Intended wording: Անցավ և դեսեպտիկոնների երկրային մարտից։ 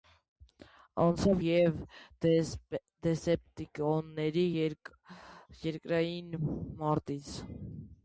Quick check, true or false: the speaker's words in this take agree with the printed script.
true